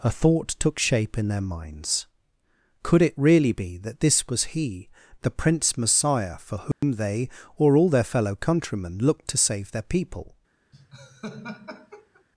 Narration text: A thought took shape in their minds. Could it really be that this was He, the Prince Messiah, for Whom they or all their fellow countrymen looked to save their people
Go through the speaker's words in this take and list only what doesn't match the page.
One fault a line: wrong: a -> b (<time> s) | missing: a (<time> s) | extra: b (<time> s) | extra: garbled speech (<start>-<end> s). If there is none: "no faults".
no faults